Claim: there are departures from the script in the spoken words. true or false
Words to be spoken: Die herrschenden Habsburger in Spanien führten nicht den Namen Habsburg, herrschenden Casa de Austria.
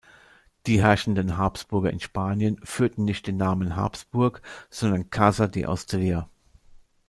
true